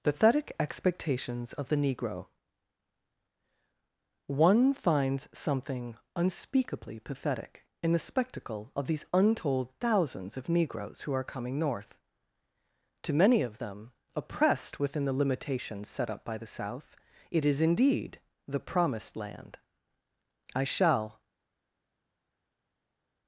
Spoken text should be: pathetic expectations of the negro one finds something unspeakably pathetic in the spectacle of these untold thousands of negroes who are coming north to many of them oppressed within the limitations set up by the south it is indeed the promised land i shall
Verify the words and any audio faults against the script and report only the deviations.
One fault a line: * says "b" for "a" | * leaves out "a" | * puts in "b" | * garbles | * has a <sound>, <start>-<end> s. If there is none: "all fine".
all fine